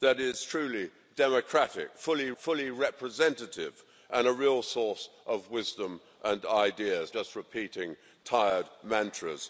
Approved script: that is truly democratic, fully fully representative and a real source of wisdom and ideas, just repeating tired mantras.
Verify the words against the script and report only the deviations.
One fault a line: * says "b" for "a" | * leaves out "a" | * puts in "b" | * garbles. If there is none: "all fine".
all fine